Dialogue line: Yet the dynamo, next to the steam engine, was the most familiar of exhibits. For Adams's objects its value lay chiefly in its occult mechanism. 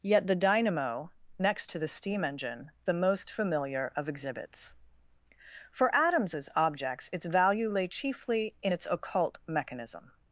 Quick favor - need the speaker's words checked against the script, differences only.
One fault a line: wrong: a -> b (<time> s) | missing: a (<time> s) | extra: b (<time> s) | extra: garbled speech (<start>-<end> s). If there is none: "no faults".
missing: was (2.7 s)